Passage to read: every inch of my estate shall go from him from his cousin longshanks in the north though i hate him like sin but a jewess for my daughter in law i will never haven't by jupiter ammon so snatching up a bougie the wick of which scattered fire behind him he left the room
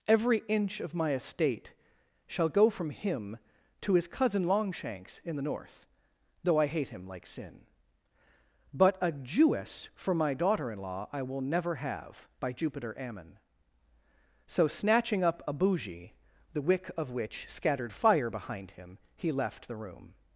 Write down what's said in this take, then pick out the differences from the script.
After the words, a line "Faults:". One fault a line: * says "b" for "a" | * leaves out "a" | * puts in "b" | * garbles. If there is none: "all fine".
every inch of my estate shall go from him to his cousin longshanks in the north though i hate him like sin but a jewess for my daughter in law i will never have by jupiter ammon so snatching up a bougie the wick of which scattered fire behind him he left the room
Faults:
* says "to" for "from"
* says "have" for "haven't"